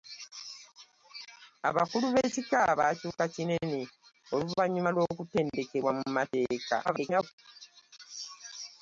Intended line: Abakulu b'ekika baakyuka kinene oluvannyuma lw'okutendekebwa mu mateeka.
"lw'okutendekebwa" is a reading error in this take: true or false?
false